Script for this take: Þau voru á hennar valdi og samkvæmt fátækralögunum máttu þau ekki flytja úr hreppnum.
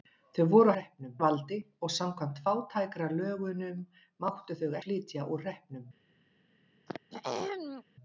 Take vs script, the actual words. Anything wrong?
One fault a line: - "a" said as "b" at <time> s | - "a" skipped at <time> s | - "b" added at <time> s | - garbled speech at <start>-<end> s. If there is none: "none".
- "hennar" said as "hreppnum" at 0.8 s
- "ekki" skipped at 4.7 s